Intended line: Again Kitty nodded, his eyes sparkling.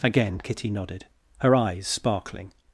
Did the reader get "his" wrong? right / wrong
wrong